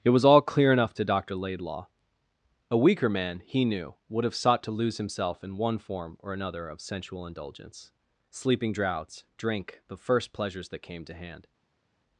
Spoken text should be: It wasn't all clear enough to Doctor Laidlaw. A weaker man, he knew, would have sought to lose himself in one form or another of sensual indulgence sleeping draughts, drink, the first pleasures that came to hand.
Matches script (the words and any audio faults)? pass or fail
fail